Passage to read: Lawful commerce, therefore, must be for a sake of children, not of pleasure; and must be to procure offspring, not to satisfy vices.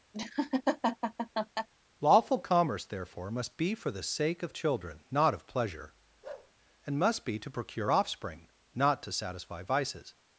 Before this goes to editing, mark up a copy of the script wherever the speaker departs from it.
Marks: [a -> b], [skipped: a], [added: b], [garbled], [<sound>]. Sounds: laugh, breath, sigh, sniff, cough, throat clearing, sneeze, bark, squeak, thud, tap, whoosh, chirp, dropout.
[laugh] Lawful commerce, therefore, must be for [a -> the] sake of children, not of pleasure; [bark] and must be to procure offspring, not to satisfy vices.